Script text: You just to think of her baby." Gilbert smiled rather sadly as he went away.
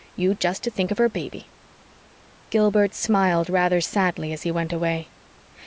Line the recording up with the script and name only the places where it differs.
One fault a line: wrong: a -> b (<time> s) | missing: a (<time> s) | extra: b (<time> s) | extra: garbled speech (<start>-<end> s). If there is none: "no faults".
no faults